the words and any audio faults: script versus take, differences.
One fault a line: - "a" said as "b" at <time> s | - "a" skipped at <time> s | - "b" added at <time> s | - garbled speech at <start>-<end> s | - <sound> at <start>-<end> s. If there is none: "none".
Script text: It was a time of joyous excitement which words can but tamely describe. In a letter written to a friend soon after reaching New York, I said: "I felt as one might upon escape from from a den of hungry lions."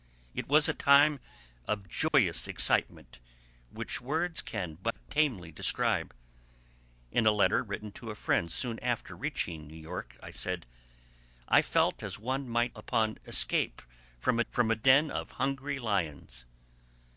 - dropout at 2.1-2.1 s
- dropout at 4.9-5.0 s